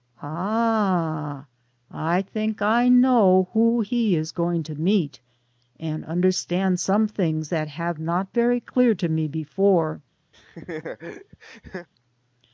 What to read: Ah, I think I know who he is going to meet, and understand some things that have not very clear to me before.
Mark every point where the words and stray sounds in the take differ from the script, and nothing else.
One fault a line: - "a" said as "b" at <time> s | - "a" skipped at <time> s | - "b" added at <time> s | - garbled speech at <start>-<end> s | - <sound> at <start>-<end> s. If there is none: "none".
- laugh at 10.3-11.9 s